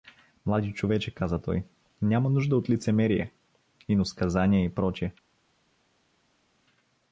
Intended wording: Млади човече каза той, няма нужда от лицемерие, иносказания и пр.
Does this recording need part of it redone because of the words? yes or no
no